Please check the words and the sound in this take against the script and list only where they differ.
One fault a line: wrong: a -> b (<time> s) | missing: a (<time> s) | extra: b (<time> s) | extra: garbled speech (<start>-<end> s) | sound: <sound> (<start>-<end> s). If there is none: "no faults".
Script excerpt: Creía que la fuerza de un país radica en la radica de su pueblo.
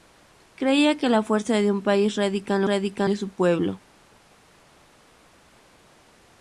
no faults